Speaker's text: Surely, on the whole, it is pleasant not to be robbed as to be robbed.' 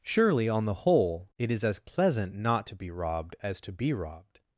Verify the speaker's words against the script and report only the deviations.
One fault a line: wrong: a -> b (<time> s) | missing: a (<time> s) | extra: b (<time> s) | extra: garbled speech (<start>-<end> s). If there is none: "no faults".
extra: as (1.6 s)